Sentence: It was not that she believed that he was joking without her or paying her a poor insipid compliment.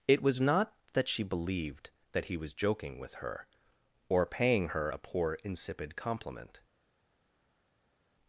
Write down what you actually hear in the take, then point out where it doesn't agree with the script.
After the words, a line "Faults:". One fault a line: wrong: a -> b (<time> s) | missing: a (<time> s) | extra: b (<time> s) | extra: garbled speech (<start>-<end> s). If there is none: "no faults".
It was not that she believed that he was joking with her or paying her a poor insipid compliment.
Faults:
wrong: without -> with (3.0 s)